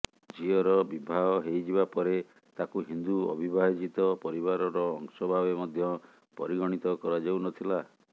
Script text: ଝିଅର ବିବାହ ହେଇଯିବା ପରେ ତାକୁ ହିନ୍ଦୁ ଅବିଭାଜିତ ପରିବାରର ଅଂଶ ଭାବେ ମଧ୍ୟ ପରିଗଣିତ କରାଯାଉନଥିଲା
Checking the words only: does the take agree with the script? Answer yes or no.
yes